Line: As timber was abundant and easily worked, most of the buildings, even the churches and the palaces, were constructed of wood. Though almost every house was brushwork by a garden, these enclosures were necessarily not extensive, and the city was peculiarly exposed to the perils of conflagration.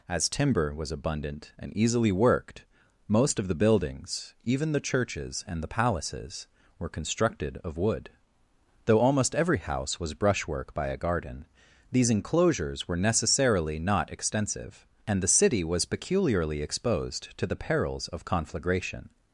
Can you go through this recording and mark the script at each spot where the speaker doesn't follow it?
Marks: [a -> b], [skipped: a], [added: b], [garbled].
As timber was abundant and easily worked, most of the buildings, even the churches and the palaces, were constructed of wood. Though almost every house was brushwork by a garden, these enclosures were necessarily not extensive, and the city was peculiarly exposed to the perils of conflagration.